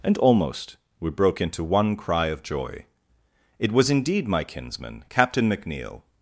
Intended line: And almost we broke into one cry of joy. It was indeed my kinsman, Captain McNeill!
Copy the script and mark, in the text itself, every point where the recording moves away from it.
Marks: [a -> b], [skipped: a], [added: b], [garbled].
And almost we broke into one cry of joy. It was indeed my kinsman, Captain McNeill!